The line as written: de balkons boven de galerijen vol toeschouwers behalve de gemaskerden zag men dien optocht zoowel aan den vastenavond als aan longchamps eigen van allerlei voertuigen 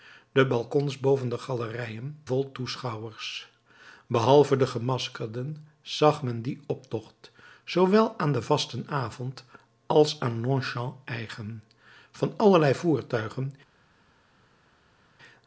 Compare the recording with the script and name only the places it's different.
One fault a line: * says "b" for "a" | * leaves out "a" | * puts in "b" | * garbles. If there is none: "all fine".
all fine